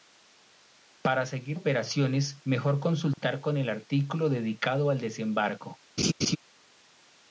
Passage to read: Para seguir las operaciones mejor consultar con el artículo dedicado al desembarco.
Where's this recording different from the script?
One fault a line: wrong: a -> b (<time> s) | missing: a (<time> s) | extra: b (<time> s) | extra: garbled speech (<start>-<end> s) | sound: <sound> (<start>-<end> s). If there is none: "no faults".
missing: las (1.6 s)
sound: dropout (3.1-3.2 s)
sound: laugh (6.0-6.4 s)